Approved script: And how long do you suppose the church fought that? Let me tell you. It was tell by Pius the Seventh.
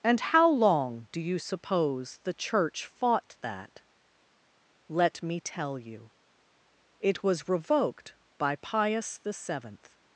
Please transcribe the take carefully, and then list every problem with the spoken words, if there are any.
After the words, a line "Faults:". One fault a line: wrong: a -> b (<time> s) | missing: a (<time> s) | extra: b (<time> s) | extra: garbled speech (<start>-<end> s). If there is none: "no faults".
And how long do you suppose the church fought that? Let me tell you. It was revoked by Pius the Seventh.
Faults:
wrong: tell -> revoked (7.5 s)